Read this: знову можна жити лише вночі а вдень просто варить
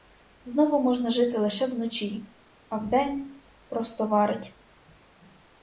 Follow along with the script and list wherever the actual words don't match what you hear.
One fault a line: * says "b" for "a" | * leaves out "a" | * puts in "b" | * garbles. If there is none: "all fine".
all fine